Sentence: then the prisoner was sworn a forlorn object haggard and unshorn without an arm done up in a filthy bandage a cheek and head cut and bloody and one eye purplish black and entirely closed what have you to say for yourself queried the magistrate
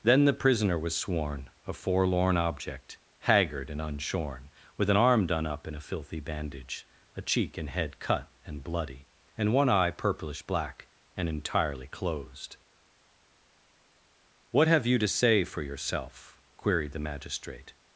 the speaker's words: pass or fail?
fail